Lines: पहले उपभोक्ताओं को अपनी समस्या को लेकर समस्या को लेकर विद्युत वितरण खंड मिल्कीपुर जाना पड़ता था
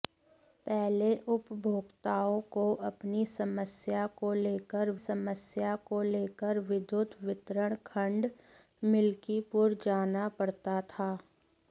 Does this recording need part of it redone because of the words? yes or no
no